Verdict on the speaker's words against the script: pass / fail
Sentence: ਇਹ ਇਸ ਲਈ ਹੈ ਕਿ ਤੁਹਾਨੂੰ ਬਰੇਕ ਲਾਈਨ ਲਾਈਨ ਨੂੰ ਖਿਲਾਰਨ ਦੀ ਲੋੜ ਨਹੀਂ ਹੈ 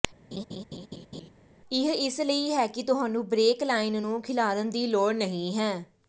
fail